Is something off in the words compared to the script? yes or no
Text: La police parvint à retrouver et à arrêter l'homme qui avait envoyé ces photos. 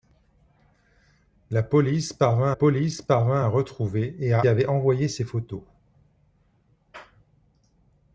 yes